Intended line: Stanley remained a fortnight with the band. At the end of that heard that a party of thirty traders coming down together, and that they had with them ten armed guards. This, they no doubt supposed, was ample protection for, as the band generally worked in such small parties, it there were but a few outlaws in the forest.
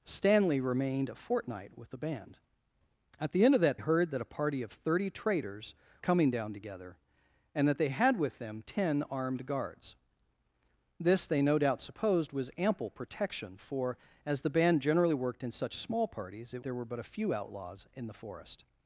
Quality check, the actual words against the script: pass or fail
pass